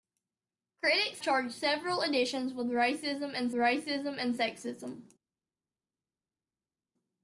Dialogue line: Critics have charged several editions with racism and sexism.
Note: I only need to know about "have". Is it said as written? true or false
false